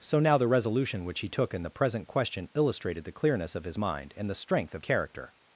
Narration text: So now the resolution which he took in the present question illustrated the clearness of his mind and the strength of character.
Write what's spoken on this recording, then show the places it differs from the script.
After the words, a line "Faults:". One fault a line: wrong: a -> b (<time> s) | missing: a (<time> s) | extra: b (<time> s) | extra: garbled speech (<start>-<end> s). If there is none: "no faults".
So now the resolution which he took in the present question illustrated the clearness of his mind and the strength of character.
Faults:
no faults